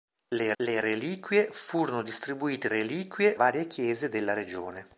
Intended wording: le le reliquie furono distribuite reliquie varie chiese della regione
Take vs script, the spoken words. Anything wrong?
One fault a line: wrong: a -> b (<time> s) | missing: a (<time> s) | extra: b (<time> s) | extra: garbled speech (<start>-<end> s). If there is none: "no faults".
no faults